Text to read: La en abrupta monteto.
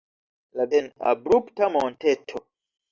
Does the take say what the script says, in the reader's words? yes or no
yes